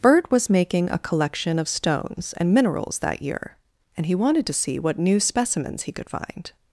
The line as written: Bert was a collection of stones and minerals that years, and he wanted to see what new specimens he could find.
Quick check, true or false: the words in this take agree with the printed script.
false